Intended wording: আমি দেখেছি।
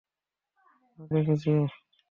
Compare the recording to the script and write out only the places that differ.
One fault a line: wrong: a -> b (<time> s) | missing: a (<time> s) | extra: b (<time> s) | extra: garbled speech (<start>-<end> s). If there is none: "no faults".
no faults